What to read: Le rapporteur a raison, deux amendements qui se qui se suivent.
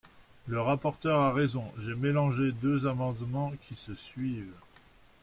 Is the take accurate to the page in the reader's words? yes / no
no